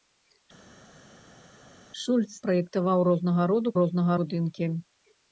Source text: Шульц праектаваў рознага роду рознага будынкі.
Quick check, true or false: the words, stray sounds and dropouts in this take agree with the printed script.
true